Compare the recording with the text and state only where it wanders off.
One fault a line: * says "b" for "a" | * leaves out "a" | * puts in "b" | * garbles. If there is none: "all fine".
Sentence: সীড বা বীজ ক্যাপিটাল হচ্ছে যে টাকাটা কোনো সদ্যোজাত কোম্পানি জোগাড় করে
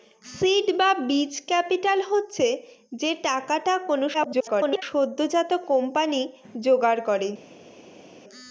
* garbles